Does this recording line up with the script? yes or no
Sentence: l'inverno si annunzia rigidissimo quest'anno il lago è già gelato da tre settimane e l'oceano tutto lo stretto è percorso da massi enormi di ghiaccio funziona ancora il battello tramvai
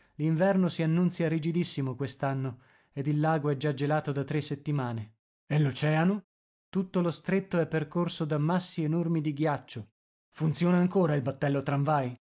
no